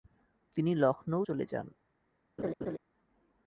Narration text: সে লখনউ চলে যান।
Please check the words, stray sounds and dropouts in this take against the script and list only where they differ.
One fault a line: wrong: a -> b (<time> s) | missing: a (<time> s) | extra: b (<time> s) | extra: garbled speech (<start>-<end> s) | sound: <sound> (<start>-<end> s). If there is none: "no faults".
wrong: সে -> তিনি (0.6 s)
sound: laugh (2.4-2.8 s)